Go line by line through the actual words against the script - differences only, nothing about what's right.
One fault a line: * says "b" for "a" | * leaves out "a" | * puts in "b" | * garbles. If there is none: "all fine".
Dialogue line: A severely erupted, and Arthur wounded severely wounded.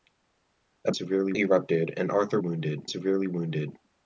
all fine